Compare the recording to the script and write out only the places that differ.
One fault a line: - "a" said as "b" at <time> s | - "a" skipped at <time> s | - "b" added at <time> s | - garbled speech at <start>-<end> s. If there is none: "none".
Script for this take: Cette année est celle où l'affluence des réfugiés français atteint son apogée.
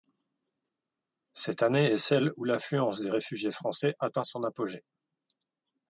none